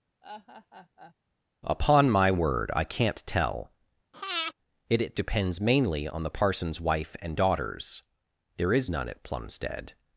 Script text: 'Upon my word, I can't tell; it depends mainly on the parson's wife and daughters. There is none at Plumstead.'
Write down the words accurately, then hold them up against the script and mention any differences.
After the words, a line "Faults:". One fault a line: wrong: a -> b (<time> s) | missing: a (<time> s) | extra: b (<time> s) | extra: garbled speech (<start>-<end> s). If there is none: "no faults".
'Upon my word, I can't tell; it it depends mainly on the parson's wife and daughters. There is none at Plumstead.'
Faults:
extra: it (5.0 s)